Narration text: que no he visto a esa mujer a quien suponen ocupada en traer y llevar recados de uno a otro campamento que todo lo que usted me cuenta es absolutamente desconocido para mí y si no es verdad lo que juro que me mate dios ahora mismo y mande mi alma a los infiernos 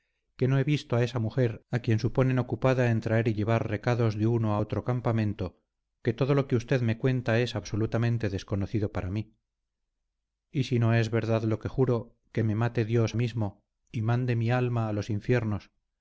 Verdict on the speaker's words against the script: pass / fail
fail